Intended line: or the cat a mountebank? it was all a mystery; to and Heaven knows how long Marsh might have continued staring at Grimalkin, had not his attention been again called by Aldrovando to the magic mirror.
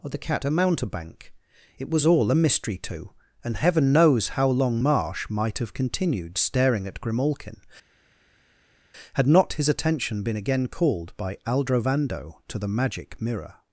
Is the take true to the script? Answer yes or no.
yes